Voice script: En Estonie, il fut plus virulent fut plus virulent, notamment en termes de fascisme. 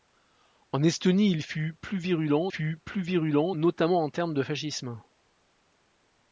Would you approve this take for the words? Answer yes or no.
yes